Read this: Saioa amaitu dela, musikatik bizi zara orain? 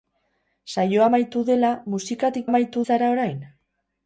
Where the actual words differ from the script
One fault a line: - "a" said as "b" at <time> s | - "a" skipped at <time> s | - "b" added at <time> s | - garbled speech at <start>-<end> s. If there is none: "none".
- "bizi" said as "amaitu" at 2.5 s